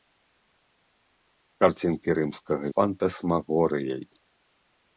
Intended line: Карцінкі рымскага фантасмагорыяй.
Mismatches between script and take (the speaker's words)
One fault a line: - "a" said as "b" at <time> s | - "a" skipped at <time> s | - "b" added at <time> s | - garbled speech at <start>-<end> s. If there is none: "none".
none